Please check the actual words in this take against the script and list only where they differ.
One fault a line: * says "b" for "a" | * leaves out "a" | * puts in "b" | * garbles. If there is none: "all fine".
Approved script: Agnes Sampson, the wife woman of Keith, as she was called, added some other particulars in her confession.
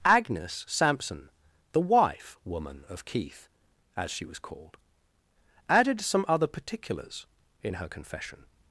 all fine